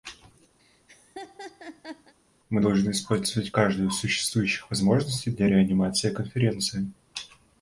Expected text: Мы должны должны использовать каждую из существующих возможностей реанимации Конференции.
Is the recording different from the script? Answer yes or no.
yes